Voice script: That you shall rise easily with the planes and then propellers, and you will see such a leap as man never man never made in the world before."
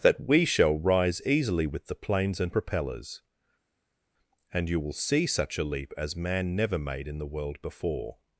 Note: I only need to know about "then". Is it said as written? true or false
false